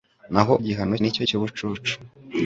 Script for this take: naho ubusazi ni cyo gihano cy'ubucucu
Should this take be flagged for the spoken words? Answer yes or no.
yes